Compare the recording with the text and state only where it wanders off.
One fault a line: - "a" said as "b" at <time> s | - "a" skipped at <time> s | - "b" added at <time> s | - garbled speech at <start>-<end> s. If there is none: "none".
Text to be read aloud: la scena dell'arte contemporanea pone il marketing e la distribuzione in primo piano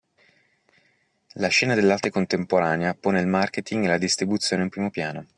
none